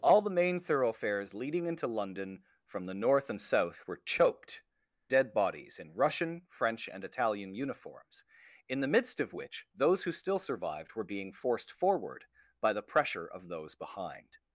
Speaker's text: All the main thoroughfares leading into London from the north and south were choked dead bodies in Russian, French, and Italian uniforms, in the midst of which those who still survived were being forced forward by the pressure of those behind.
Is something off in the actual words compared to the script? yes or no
no